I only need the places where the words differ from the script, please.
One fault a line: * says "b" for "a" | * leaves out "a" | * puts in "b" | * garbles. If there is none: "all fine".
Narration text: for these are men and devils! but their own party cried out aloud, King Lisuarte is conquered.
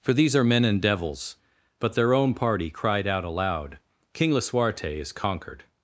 all fine